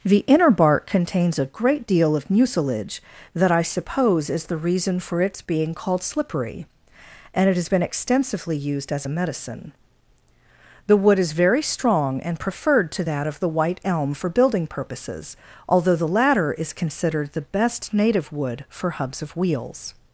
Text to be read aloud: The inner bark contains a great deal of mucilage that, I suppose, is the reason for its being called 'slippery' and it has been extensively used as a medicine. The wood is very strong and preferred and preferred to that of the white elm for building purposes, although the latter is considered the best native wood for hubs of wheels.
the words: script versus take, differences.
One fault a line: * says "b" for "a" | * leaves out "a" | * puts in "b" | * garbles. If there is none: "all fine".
* leaves out "and preferred"